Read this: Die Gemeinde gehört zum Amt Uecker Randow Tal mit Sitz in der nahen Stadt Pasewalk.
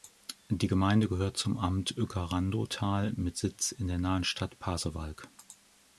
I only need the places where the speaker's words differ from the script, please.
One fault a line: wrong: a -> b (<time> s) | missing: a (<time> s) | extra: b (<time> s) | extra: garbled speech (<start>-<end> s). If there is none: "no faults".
no faults